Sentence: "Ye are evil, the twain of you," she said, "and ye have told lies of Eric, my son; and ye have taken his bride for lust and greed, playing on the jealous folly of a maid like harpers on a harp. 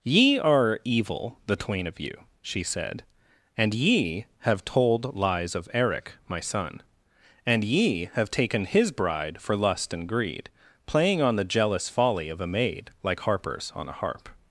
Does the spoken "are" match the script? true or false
true